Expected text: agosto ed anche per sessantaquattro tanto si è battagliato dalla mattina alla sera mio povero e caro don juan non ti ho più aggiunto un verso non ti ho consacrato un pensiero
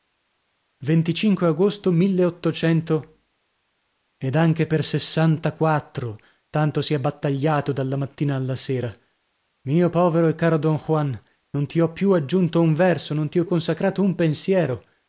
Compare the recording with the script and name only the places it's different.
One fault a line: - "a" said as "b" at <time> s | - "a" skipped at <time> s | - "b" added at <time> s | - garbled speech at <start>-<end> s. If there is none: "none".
none